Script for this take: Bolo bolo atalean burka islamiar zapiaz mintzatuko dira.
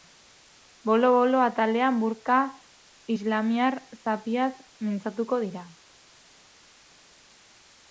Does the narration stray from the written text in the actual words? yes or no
no